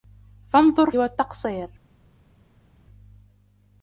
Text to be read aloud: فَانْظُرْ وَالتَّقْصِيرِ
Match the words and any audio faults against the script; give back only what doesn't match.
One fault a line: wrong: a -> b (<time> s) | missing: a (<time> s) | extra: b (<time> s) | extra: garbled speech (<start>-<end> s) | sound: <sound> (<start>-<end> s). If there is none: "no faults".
no faults